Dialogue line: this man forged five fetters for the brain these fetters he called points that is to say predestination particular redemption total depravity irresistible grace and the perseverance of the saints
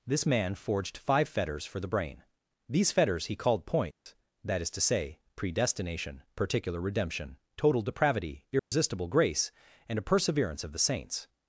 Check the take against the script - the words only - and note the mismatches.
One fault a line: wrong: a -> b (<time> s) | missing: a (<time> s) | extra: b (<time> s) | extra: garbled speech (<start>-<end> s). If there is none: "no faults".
wrong: the -> a (10.0 s)